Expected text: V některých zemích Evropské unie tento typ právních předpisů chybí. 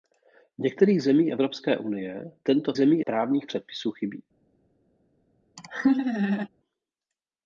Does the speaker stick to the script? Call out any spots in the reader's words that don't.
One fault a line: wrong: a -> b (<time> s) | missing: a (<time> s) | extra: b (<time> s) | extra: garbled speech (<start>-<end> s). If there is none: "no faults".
wrong: typ -> zemích (2.8 s)